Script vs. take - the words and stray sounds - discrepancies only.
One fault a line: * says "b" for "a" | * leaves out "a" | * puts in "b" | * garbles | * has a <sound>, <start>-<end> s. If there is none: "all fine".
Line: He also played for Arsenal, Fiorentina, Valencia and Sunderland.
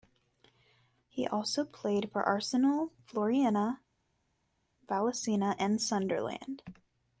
all fine